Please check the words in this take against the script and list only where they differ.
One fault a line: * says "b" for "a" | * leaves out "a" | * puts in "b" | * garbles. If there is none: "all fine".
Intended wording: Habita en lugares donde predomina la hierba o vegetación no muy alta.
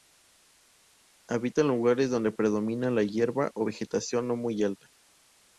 all fine